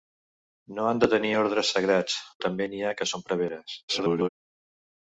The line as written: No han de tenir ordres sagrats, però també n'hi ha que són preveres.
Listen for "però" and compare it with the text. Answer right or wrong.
wrong